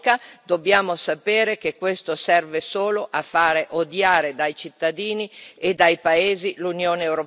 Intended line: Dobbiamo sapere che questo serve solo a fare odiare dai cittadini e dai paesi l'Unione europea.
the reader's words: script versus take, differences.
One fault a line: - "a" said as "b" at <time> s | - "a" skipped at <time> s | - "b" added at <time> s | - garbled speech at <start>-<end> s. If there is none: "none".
none